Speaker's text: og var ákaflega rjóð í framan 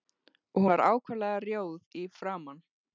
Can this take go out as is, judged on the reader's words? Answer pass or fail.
pass